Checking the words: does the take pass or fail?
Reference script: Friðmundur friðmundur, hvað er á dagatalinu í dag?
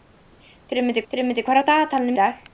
pass